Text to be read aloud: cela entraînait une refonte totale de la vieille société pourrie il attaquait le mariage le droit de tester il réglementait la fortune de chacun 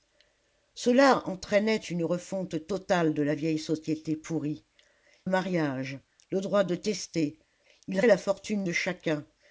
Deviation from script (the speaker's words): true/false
true